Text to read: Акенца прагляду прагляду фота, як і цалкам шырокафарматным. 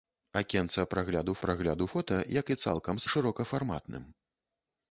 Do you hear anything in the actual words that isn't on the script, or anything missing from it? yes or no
no